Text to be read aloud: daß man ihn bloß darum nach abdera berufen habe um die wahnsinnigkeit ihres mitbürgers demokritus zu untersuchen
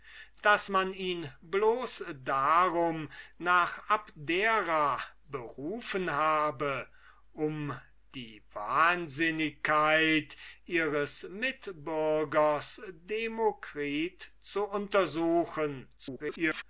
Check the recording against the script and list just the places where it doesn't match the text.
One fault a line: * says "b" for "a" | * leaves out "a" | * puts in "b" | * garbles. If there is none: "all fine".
* garbles